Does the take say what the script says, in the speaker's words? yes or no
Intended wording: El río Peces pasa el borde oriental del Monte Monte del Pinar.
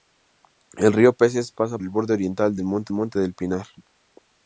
yes